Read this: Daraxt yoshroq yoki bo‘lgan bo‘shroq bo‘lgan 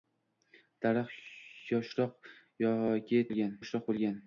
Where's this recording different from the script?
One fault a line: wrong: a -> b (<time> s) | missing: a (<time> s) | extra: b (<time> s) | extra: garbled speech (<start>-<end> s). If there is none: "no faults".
no faults